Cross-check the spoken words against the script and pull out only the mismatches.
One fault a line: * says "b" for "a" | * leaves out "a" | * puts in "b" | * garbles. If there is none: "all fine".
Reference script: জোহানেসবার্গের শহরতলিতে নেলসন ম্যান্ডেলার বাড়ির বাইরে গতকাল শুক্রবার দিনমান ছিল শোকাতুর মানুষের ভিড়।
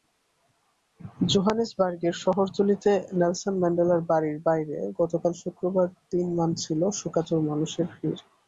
all fine